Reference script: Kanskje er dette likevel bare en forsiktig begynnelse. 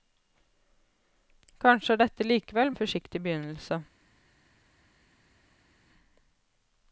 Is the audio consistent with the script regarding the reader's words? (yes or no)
no